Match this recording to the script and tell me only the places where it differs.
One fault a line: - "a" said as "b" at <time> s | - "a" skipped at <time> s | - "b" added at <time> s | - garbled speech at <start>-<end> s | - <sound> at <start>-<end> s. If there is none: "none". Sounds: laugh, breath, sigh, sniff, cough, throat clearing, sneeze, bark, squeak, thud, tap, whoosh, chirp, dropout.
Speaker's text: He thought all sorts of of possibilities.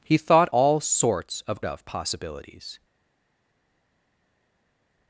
none